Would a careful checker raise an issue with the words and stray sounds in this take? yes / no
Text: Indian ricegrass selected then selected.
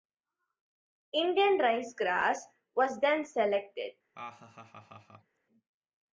yes